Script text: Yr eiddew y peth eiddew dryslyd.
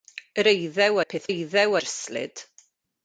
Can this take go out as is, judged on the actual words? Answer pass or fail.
pass